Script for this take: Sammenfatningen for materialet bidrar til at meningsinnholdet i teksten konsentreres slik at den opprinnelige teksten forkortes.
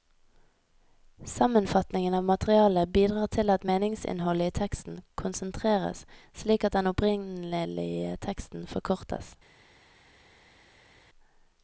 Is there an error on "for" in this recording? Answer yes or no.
yes